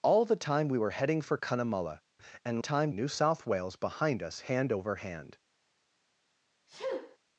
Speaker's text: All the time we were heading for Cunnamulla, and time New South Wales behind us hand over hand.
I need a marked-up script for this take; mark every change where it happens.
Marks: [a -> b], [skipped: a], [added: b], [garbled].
All the time we were heading for Cunnamulla, and time New South Wales behind us hand over hand.